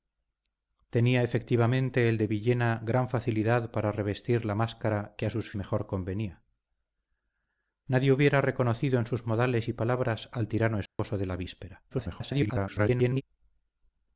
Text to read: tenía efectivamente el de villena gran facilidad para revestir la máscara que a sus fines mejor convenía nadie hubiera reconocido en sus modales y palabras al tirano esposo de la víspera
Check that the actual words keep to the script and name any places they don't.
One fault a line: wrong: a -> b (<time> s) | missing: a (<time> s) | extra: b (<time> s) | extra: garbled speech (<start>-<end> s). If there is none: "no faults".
missing: fines (5.5 s)
extra: garbled speech (11.9-13.2 s)